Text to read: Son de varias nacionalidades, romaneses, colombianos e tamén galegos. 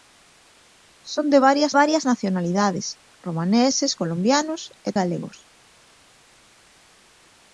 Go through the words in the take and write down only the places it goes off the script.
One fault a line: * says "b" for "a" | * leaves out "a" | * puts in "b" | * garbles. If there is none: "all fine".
* puts in "varias"
* leaves out "tamén"